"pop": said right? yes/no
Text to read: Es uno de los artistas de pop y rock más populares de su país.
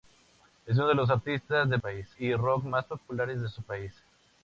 no